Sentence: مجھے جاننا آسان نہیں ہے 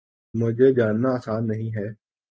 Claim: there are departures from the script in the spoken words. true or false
false